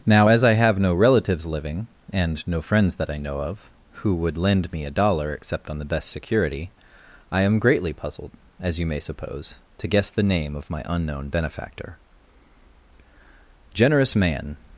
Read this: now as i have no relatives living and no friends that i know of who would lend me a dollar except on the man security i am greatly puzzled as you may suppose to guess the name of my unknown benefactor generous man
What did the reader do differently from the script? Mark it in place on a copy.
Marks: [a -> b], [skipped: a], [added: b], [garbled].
now as i have no relatives living and no friends that i know of who would lend me a dollar except on the [man -> best] security i am greatly puzzled as you may suppose to guess the name of my unknown benefactor generous man